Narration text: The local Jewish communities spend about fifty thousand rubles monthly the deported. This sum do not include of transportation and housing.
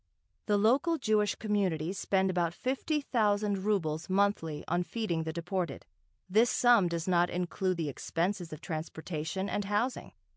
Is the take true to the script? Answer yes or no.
no